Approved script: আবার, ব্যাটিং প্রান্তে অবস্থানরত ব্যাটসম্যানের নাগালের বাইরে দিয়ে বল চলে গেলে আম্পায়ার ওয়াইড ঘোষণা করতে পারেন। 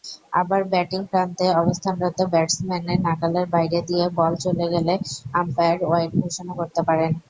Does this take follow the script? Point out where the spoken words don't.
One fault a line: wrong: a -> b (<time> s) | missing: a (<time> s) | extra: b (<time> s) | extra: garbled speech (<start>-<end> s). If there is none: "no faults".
no faults